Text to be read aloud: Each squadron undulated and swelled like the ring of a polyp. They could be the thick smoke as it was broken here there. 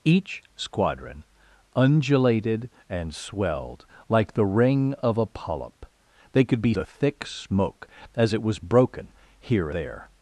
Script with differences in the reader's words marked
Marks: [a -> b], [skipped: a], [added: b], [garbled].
Each squadron undulated and swelled like the ring of a polyp. They could be the thick smoke as it was broken here there.